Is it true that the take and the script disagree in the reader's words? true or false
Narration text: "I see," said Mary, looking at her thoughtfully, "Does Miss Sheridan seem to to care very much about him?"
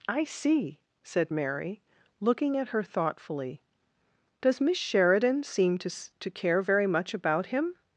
false